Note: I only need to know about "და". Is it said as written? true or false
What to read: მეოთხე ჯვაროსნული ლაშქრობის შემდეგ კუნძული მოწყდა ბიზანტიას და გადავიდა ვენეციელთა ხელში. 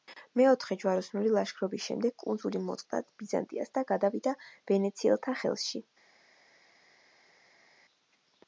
true